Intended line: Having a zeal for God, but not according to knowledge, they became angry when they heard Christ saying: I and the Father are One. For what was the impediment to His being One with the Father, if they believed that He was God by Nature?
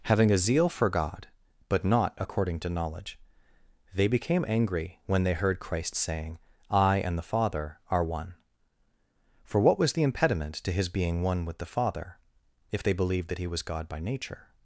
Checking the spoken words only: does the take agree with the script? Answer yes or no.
yes